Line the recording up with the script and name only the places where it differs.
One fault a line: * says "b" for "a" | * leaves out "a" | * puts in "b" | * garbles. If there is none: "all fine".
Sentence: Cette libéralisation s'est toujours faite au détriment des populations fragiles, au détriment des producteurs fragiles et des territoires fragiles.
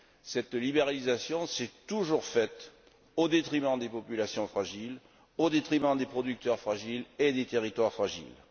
all fine